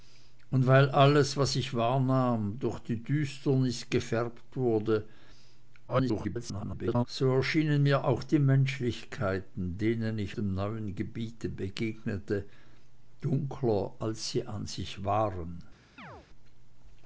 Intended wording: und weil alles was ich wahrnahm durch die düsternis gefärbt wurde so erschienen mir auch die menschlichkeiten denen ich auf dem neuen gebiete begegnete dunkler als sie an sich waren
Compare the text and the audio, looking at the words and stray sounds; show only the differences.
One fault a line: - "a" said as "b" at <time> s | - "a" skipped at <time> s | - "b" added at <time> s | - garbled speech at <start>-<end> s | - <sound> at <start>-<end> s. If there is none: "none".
- garbled speech at 5.9-7.1 s
- "auf" skipped at 10.4 s
- chirp at 16.0-16.3 s